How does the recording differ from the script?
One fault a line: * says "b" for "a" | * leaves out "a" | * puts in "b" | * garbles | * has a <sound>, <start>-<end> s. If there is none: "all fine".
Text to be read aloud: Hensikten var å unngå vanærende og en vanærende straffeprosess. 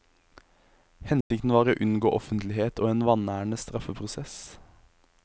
* has a dropout, 1.2-1.3 s
* says "offentlighet" for "vanærende"